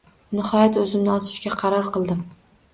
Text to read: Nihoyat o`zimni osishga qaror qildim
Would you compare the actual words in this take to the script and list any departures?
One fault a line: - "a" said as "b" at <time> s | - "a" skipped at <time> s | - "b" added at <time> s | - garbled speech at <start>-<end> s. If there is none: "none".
none